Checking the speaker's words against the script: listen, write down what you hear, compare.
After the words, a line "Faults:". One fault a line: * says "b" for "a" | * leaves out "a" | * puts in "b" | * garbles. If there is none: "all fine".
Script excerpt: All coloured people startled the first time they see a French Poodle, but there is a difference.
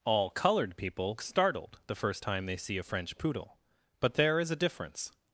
All coloured people startled the first time they see a French Poodle, but there is a difference.
Faults:
all fine